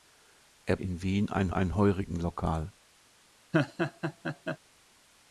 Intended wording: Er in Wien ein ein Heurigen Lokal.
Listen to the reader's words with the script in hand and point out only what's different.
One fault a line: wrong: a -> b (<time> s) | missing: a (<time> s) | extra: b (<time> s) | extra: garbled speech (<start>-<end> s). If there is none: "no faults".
no faults